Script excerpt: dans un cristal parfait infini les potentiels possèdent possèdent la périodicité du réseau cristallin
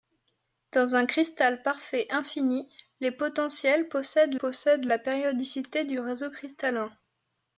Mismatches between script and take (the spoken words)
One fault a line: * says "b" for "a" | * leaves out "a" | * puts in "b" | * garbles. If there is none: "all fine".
all fine